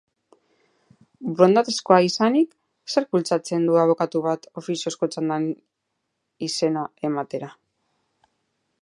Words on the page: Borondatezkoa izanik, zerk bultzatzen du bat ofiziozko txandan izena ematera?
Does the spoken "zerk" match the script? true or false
true